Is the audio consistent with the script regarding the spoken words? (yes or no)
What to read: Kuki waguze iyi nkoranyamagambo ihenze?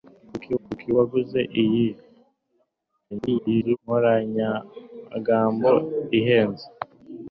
no